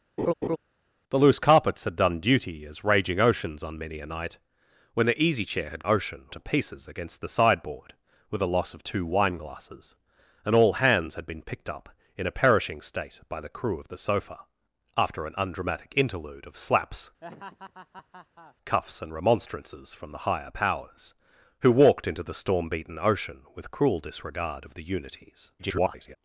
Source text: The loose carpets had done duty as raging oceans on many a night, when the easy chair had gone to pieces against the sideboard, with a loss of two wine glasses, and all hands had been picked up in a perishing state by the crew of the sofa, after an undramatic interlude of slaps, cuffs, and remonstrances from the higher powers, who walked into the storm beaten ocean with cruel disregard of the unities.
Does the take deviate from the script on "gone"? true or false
true